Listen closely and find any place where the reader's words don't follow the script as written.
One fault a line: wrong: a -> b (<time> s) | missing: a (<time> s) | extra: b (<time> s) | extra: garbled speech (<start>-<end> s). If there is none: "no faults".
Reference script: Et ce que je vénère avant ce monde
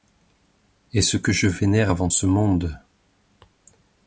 no faults